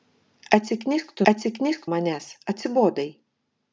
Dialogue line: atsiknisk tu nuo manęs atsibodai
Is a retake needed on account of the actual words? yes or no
yes